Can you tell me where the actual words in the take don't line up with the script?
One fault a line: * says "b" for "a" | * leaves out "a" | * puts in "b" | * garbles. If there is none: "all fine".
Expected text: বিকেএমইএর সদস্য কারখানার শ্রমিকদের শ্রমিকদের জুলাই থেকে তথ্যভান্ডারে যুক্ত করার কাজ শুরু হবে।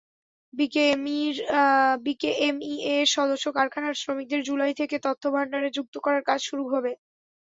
* leaves out "শ্রমিকদের"